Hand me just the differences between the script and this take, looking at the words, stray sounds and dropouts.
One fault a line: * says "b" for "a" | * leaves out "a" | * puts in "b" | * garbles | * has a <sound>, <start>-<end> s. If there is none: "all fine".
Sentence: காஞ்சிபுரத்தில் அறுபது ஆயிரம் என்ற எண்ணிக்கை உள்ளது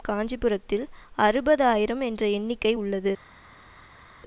all fine